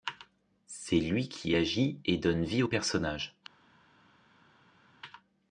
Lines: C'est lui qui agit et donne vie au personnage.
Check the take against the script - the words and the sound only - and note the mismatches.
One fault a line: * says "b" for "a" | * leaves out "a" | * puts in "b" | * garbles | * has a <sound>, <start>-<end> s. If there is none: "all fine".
all fine